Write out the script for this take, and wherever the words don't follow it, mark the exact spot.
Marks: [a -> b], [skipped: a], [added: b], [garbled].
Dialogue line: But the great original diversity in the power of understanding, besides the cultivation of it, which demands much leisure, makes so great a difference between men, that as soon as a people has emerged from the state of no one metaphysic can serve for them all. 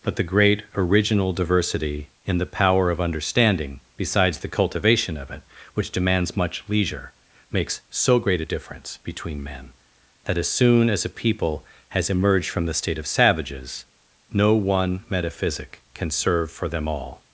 But the great original diversity in the power of understanding, besides the cultivation of it, which demands much leisure, makes so great a difference between men, that as soon as a people has emerged from the state of [added: savages] no one metaphysic can serve for them all.